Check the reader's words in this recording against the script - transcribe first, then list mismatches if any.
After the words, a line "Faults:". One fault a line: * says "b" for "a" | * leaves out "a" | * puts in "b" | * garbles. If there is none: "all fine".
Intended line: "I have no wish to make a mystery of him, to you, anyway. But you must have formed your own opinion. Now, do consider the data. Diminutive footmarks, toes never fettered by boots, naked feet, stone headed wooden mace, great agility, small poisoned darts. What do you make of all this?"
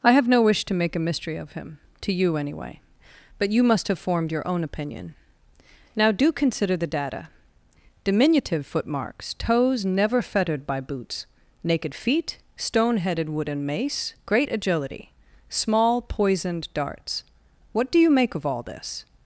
"I have no wish to make a mystery of him, to you, anyway. But you must have formed your own opinion. Now, do consider the data. Diminutive footmarks, toes never fettered by boots, naked feet, stone headed wooden mace, great agility, small poisoned darts. What do you make of all this?"
Faults:
all fine